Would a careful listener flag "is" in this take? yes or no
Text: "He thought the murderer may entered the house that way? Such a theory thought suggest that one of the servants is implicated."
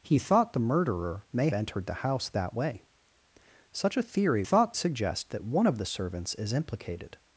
no